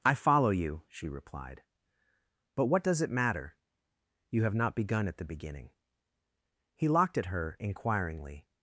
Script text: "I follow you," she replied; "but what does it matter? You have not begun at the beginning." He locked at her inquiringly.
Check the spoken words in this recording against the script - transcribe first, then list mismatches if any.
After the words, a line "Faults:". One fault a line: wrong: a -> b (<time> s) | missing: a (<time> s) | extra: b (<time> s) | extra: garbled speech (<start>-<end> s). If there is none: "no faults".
"I follow you," she replied; "but what does it matter? You have not begun at the beginning." He locked at her inquiringly.
Faults:
no faults